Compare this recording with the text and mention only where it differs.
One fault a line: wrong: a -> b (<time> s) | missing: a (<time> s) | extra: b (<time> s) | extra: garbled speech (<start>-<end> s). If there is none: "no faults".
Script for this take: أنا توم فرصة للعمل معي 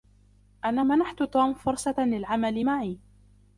extra: منحت (0.8 s)